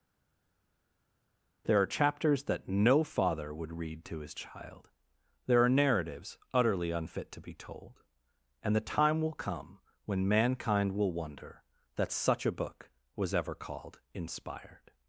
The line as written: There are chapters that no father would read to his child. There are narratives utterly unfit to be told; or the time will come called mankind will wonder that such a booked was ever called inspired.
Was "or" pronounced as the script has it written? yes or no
no